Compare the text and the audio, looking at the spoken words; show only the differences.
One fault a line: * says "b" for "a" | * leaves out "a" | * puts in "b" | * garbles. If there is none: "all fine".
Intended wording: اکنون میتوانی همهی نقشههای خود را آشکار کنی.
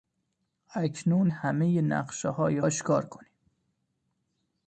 * leaves out "میتوانی"
* leaves out "خود را"